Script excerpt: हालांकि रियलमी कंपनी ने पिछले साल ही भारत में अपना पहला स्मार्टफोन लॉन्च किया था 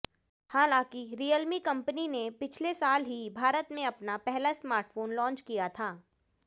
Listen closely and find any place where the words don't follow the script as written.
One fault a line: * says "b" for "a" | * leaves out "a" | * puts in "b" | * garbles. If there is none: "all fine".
all fine